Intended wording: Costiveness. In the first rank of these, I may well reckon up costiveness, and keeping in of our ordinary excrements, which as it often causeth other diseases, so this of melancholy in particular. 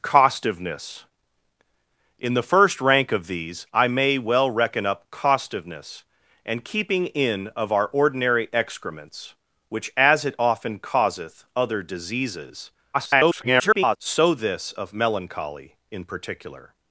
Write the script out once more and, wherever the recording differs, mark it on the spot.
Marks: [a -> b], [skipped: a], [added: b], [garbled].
Costiveness. In the first rank of these, I may well reckon up costiveness, and keeping in of our ordinary excrements, which as it often causeth other diseases, [garbled] so this of melancholy in particular.